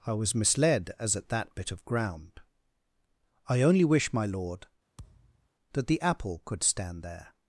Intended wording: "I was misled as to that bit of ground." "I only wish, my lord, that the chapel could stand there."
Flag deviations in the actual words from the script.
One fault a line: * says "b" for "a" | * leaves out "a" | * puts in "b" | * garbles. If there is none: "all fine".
* says "at" for "to"
* says "apple" for "chapel"